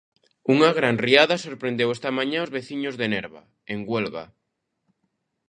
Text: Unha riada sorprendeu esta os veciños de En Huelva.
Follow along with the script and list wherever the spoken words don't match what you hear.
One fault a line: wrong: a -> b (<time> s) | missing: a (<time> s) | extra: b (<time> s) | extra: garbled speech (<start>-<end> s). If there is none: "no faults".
extra: gran (0.8 s)
extra: mañá (2.2 s)
extra: Nerva (3.1 s)